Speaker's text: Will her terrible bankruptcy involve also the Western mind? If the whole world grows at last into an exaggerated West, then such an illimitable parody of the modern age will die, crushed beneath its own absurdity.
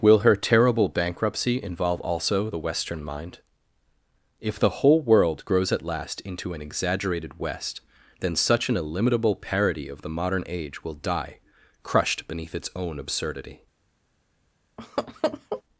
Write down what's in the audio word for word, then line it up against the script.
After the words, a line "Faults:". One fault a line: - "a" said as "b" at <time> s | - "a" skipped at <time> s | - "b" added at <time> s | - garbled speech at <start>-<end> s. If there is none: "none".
Will her terrible bankruptcy involve also the Western mind? If the whole world grows at last into an exaggerated West, then such an illimitable parody of the modern age will die, crushed beneath its own absurdity.
Faults:
none